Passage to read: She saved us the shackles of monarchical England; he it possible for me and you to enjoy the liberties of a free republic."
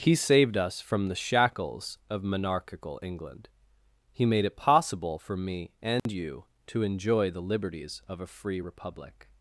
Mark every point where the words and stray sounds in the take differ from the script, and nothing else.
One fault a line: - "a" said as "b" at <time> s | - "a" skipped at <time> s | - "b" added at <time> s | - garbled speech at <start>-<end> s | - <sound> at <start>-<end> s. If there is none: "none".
- "She" said as "He" at 0.0 s
- "from" added at 0.8 s
- "made" added at 4.2 s
- dropout at 6.0-6.1 s